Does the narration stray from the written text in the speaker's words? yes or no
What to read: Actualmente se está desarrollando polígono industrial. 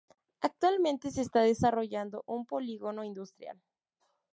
yes